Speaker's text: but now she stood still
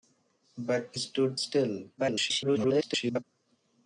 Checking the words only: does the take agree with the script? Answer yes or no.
no